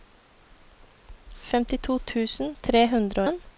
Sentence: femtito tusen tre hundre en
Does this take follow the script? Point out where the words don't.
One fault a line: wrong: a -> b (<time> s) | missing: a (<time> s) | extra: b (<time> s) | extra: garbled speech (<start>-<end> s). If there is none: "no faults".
no faults